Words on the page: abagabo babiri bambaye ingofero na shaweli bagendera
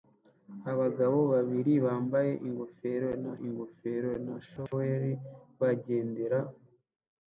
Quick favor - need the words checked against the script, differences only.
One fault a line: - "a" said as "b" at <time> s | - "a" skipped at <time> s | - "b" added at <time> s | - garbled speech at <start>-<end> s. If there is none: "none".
- "ingofero na" added at 3.5 s